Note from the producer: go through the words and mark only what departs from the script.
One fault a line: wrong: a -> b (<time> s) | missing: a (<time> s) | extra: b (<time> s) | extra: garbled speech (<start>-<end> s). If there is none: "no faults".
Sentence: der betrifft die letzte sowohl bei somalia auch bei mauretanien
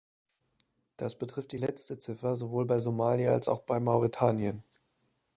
wrong: der -> das (1.0 s)
extra: ziffer (2.0 s)
extra: als (3.3 s)